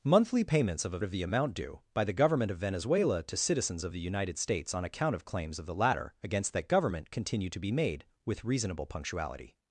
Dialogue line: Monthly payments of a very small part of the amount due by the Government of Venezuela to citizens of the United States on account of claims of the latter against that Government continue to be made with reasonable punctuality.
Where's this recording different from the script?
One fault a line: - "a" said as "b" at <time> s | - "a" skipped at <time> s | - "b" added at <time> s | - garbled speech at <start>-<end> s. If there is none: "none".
- "very small part" skipped at 1.0 s